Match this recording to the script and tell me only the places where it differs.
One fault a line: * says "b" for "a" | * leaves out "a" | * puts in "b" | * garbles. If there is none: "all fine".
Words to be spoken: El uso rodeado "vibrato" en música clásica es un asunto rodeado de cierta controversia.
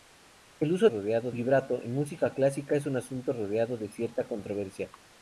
all fine